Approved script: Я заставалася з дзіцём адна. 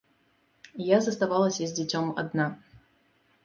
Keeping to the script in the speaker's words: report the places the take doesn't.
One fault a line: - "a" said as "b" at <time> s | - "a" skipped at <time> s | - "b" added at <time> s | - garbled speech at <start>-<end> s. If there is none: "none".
none